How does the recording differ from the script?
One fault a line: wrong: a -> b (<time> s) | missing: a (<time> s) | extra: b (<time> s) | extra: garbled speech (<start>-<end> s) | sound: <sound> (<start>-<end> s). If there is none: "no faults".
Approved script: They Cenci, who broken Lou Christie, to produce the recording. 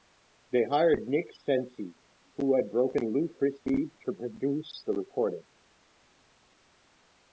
extra: hired Nick (0.7 s)
extra: had (2.5 s)